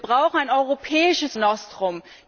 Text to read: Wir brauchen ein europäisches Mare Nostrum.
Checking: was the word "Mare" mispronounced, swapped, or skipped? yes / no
yes